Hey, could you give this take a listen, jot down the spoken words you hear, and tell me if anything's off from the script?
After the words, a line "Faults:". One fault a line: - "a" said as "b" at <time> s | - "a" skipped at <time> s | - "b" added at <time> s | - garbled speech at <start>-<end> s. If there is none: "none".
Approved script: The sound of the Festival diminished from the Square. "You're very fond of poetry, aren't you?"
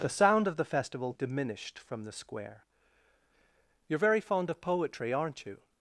The sound of the Festival diminished from the Square. "You're very fond of poetry, aren't you?"
Faults:
none